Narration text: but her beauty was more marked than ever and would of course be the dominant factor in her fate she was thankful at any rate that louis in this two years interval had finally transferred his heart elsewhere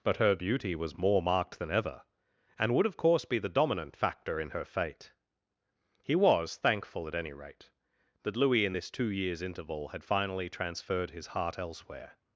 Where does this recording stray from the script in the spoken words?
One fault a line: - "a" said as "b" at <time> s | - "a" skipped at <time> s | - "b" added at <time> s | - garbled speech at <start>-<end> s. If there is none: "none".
- "she" said as "he" at 6.0 s